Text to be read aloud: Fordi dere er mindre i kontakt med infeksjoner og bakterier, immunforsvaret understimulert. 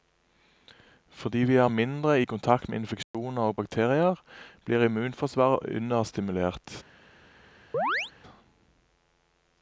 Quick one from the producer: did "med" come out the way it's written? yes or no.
yes